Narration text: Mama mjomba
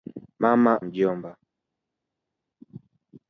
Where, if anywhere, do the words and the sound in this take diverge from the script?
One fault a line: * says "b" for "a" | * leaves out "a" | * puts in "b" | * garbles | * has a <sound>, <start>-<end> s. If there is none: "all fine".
all fine